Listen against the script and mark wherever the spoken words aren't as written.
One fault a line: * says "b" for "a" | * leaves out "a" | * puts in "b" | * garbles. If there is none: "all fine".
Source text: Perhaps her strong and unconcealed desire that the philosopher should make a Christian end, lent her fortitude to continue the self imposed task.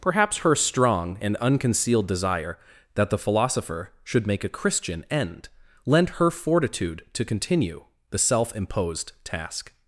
all fine